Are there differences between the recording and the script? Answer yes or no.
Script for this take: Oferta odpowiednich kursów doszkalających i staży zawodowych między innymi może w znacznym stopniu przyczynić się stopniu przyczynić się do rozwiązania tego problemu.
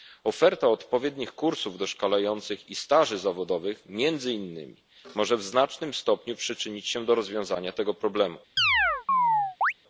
yes